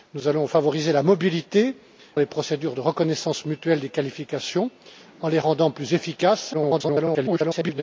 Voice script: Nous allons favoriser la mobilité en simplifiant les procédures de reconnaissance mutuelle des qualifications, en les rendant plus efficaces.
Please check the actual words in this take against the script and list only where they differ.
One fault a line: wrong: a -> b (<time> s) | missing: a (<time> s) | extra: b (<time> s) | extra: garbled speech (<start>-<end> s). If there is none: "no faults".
missing: en simplifiant (1.8 s)
extra: garbled speech (6.5-7.8 s)